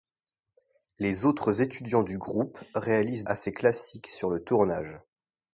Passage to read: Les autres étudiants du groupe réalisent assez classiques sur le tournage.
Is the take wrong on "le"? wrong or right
right